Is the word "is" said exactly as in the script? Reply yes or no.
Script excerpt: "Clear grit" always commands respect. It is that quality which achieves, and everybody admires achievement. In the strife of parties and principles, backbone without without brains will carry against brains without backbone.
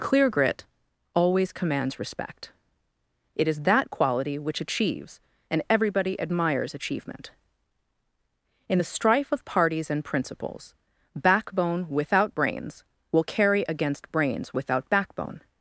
yes